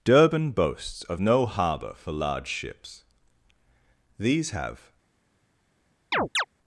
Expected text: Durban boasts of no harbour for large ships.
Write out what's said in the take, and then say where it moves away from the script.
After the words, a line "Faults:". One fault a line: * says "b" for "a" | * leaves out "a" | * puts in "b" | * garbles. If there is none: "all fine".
Durban boasts of no harbour for large ships. These have
Faults:
* puts in "These have"